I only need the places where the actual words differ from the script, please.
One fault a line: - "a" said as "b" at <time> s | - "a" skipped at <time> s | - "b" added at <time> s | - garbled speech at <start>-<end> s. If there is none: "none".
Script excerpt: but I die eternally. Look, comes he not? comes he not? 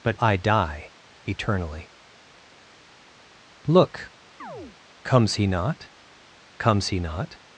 none